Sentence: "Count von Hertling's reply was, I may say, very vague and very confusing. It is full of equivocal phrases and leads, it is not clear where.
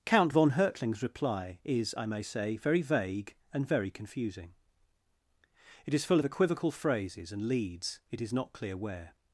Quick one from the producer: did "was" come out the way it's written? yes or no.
no